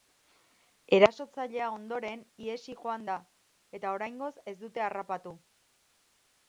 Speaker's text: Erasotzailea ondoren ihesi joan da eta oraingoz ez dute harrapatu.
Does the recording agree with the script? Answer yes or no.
yes